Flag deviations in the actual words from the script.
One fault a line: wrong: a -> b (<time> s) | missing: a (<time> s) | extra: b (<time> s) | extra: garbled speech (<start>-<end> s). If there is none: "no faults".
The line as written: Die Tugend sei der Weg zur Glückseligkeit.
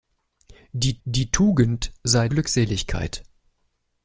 extra: die (1.0 s)
missing: der Weg zur (2.3 s)